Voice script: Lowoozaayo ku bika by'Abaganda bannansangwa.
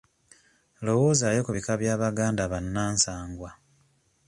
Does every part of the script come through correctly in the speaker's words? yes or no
yes